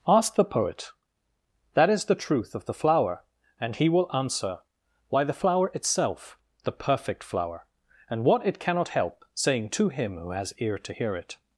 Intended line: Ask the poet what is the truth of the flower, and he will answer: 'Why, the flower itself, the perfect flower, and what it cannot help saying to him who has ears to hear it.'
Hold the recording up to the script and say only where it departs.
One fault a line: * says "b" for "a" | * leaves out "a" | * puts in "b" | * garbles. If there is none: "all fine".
* says "that" for "what"
* says "ear" for "ears"